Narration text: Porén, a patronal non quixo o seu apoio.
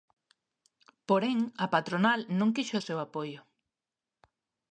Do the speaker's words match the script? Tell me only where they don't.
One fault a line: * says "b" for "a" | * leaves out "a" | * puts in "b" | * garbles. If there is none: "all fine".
all fine